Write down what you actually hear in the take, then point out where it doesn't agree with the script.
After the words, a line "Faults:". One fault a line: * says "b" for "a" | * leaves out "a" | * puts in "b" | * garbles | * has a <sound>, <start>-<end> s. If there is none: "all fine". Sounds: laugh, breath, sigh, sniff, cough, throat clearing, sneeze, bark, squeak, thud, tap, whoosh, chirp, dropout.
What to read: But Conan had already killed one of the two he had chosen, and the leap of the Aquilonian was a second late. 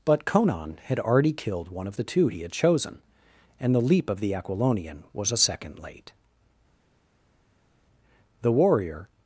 But Conan had already killed one of the two he had chosen, and the leap of the Aquilonian was a second late. The warrior
Faults:
* puts in "The warrior"